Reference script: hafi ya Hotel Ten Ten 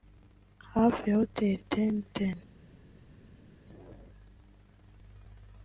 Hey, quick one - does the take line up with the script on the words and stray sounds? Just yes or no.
yes